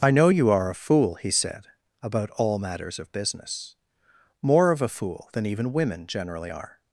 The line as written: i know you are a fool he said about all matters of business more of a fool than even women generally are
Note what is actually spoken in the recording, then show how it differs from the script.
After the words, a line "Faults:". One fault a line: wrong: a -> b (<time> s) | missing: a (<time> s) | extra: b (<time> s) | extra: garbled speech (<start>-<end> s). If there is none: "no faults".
i know you are a fool he said about all matters of business more of a fool than even women generally are
Faults:
no faults